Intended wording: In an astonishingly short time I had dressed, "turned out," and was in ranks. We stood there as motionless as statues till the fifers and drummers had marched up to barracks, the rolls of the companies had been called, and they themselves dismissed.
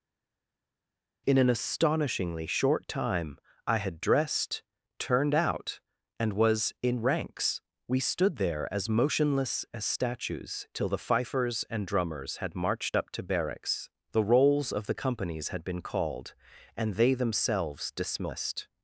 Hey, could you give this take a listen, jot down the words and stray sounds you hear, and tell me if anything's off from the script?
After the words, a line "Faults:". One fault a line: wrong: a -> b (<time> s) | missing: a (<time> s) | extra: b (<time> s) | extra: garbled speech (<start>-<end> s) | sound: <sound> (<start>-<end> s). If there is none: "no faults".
In an astonishingly short time I had dressed, "turned out," and was in ranks. We stood there as motionless as statues till the fifers and drummers had marched up to barracks, the rolls of the companies had been called, and they themselves dismissed.
Faults:
no faults